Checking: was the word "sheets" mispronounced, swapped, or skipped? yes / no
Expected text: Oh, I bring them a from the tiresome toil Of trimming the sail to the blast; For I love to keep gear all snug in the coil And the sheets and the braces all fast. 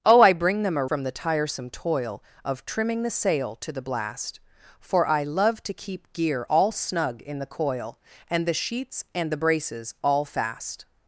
no